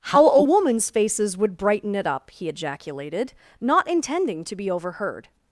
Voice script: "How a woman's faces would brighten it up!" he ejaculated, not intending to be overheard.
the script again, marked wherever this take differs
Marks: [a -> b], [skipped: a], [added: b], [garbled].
"How a woman's faces would brighten it up!" he ejaculated, not intending to be overheard.